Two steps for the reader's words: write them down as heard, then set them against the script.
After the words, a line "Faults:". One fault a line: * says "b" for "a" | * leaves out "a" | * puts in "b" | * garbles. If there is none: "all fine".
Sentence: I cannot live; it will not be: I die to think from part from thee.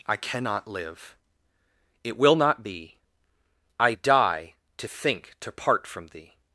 I cannot live; it will not be: I die to think to part from thee.
Faults:
* says "to" for "from"